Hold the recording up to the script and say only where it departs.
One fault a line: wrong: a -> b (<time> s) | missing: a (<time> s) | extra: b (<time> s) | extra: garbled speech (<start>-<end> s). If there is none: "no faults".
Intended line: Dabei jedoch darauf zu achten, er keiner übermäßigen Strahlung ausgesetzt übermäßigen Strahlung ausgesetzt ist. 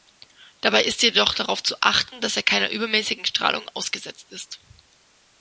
extra: ist (0.8 s)
extra: dass (2.2 s)
missing: übermäßigen Strahlung ausgesetzt (4.3 s)